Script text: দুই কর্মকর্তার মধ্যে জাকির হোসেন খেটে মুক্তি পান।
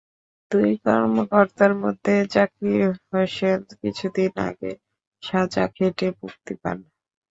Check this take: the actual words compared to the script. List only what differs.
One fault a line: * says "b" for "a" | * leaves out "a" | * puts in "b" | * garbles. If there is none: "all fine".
* puts in "কিছুদিন আগে সাজা"